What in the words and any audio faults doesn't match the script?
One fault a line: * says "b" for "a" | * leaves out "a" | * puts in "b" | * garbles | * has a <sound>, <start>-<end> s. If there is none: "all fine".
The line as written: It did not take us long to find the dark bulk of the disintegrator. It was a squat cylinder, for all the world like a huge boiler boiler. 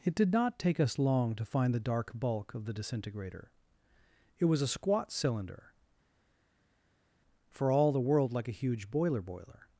all fine